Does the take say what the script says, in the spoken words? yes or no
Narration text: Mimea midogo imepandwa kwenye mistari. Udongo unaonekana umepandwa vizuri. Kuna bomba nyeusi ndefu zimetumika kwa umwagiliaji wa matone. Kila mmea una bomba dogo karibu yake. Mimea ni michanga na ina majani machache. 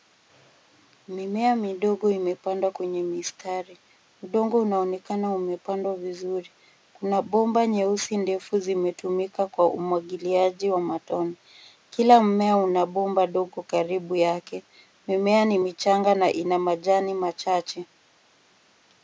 yes